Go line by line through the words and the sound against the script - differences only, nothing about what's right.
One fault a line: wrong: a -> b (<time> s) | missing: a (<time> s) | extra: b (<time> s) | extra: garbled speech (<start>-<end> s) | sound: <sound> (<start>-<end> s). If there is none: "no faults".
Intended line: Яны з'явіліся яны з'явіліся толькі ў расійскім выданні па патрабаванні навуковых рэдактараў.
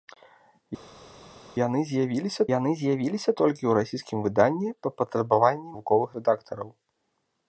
no faults